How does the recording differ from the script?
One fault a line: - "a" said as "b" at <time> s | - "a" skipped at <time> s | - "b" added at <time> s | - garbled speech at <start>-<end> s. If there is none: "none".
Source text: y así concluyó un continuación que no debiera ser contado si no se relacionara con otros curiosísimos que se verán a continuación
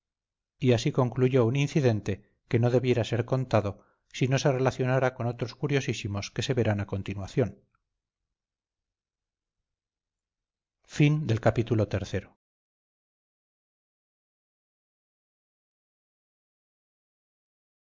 - "continuación" said as "incidente" at 1.6 s